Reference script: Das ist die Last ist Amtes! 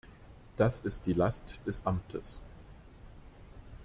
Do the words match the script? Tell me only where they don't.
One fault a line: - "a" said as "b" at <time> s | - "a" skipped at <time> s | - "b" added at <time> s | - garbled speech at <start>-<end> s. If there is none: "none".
none